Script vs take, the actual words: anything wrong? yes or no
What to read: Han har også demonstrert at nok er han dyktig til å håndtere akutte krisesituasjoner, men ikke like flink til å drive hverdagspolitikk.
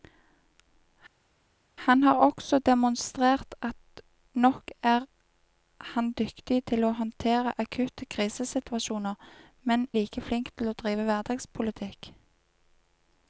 yes